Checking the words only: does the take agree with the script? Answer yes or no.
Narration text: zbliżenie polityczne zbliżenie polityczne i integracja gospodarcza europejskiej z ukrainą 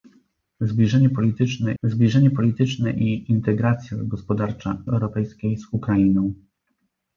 yes